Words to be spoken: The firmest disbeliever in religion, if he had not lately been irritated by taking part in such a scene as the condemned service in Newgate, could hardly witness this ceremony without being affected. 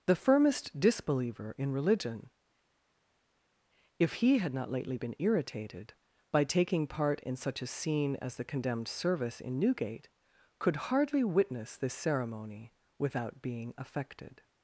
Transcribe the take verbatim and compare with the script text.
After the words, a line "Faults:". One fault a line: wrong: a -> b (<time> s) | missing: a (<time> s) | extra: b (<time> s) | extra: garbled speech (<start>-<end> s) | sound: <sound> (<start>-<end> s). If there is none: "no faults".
The firmest disbeliever in religion, if he had not lately been irritated by taking part in such a scene as the condemned service in Newgate, could hardly witness this ceremony without being affected.
Faults:
no faults